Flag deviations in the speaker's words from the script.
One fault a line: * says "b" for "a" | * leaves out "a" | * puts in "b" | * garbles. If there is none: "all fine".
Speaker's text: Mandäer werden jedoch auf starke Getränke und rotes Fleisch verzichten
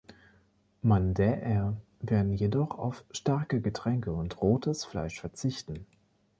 all fine